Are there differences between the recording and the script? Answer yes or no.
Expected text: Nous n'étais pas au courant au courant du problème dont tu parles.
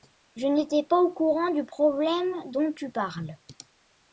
yes